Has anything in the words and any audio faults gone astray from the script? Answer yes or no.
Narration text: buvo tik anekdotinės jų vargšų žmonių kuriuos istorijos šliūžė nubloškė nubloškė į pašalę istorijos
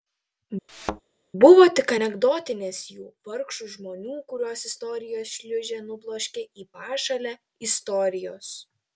yes